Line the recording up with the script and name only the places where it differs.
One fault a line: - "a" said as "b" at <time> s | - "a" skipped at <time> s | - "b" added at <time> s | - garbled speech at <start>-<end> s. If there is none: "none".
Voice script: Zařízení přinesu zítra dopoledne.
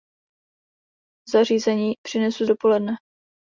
- "zítra" skipped at 2.5 s